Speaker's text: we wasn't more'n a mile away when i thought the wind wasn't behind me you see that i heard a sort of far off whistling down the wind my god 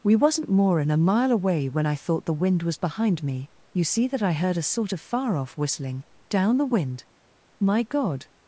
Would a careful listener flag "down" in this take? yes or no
no